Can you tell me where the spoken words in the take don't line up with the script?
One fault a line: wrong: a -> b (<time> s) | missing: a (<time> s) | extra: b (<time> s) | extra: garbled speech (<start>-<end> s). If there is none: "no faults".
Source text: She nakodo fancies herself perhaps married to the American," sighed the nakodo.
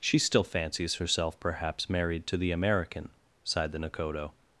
wrong: nakodo -> still (0.2 s)